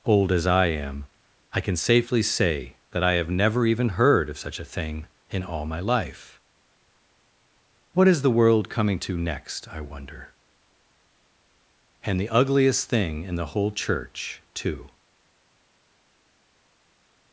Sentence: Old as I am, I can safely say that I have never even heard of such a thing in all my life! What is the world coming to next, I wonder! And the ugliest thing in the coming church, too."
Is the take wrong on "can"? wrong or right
right